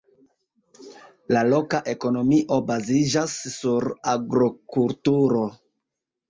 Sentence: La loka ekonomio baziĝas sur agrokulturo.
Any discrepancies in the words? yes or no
no